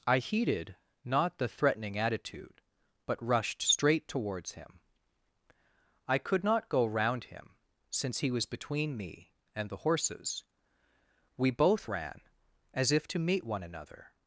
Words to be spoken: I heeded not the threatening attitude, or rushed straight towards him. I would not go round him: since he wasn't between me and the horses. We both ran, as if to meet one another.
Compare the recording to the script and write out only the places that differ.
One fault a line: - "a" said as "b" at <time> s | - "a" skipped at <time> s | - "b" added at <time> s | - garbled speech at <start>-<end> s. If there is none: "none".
- "or" said as "but" at 3.0 s
- "would" said as "could" at 6.2 s
- "wasn't" said as "was" at 8.3 s